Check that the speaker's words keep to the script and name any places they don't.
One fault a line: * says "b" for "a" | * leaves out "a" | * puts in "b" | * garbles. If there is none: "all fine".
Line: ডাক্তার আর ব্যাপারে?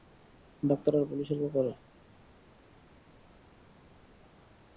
* puts in "পুলিশের"